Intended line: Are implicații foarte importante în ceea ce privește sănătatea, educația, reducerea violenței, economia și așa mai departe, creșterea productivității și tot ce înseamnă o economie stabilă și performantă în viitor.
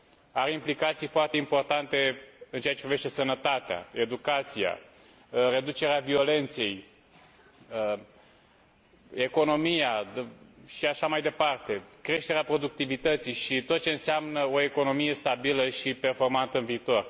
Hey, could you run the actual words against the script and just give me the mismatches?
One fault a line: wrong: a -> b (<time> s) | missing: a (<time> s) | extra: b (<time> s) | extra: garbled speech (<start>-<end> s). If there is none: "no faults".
no faults